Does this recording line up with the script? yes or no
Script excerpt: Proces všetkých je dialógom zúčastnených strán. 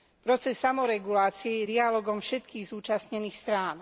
no